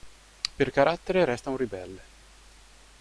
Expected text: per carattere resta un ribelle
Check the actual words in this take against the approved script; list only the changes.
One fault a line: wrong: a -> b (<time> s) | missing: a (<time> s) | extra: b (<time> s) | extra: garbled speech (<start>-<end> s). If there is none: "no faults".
no faults